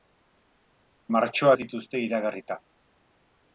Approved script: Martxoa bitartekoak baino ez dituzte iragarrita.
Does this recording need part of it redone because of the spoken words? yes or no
yes